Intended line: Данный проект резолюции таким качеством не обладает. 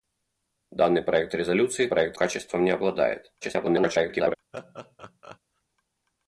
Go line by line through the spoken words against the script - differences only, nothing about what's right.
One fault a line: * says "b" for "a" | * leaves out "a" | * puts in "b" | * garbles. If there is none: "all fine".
* says "проект" for "таким"
* garbles